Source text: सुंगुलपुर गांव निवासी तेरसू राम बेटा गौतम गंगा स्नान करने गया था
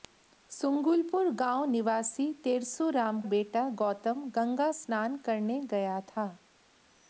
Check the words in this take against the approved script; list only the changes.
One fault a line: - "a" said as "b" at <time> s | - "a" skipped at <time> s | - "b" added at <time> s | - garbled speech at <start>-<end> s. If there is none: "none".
none